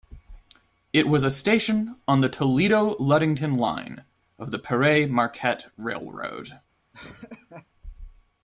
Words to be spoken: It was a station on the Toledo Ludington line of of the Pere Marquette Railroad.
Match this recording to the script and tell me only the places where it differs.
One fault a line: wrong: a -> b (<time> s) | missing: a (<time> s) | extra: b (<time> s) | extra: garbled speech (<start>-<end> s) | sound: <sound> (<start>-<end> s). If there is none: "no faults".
missing: of (4.5 s)
sound: laugh (6.9-7.7 s)